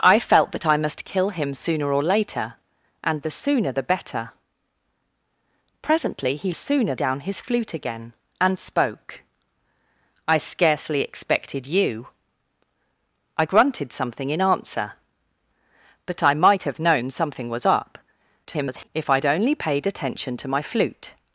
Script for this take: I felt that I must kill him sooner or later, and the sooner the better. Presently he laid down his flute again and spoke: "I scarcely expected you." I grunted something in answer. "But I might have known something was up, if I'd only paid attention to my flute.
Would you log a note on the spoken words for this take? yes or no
yes